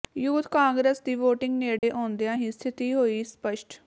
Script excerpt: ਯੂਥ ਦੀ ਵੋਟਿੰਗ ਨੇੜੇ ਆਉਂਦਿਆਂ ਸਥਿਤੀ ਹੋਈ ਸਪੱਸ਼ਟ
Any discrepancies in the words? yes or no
yes